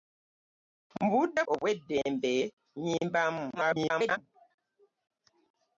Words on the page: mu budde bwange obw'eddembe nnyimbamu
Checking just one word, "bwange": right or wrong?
wrong